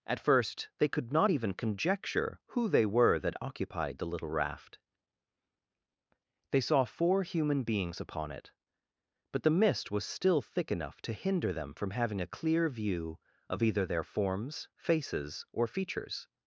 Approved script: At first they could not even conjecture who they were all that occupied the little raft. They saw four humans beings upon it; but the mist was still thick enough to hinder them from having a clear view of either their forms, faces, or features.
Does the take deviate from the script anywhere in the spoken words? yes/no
yes